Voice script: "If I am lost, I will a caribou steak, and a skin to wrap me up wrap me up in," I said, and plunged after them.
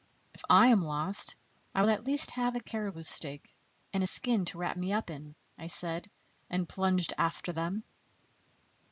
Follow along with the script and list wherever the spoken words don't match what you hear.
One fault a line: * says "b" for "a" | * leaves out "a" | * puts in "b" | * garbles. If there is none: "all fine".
* puts in "at least have"
* leaves out "wrap me up"